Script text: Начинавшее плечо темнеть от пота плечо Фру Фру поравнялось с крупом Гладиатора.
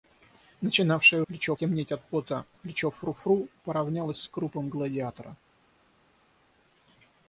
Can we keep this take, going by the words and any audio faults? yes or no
yes